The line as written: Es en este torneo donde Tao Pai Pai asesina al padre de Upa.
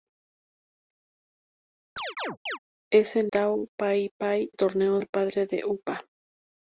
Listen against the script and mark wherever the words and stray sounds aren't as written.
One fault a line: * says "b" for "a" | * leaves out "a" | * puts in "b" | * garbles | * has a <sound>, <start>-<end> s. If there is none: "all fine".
* has a chirp, 2.0-2.6 s
* leaves out "este torneo donde"
* says "torneo" for "asesina"